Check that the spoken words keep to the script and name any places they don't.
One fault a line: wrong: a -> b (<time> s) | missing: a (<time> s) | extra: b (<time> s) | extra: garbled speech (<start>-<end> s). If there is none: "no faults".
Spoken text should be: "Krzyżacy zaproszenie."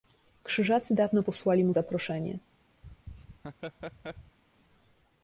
extra: dawno posłali mu (0.9 s)